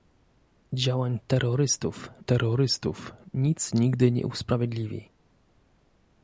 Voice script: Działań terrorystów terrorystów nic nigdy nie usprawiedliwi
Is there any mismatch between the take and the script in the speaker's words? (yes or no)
no